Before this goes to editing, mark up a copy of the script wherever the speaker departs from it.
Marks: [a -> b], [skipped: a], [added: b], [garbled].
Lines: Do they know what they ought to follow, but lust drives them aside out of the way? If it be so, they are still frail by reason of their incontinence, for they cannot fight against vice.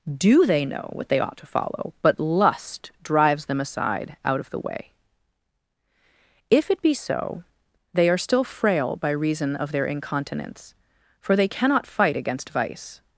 Do they know what they ought to follow, but lust drives them aside out of the way? If it be so, they are still frail by reason of their incontinence, for they cannot fight against vice.